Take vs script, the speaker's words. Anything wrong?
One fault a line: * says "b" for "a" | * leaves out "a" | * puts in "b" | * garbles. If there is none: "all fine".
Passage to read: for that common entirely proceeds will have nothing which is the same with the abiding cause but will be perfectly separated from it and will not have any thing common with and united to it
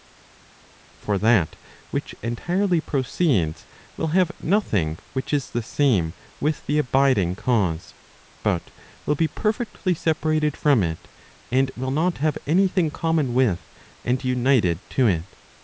* says "which" for "common"